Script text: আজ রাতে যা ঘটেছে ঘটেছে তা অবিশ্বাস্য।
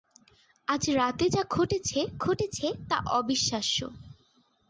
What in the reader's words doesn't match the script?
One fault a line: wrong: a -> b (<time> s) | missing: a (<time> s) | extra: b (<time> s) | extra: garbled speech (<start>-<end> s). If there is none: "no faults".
no faults